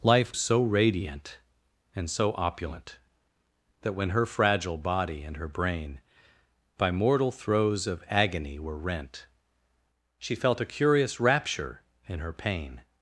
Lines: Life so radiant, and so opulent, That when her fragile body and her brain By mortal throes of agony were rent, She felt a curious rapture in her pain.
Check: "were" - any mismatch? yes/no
no